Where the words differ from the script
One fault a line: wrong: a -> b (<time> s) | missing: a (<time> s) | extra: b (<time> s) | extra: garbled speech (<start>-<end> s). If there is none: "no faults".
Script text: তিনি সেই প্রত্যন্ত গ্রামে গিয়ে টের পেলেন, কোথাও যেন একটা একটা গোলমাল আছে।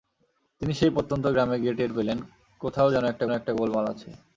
no faults